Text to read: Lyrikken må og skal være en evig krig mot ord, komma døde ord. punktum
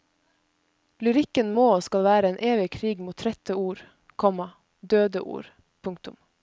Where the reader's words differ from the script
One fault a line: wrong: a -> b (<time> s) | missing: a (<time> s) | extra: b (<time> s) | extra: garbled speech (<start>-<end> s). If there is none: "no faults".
extra: trette (3.2 s)